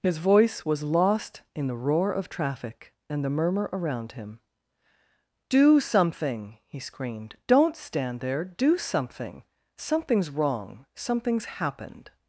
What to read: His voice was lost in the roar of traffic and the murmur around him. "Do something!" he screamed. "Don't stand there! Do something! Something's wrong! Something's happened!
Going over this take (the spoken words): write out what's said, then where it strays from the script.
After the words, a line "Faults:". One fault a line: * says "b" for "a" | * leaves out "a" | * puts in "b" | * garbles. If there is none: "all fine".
His voice was lost in the roar of traffic and the murmur around him. "Do something!" he screamed. "Don't stand there! Do something! Something's wrong! Something's happened!
Faults:
all fine